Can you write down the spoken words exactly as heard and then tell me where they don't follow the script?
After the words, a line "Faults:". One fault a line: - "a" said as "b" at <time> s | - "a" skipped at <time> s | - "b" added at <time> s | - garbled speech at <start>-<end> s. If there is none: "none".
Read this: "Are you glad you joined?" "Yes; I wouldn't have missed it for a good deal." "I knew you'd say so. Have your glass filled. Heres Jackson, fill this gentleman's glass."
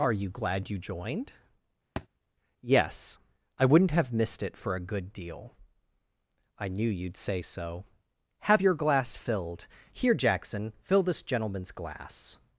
"Are you glad you joined?" "Yes; I wouldn't have missed it for a good deal." "I knew you'd say so. Have your glass filled. Here Jackson, fill this gentleman's glass."
Faults:
- "Heres" said as "Here" at 9.9 s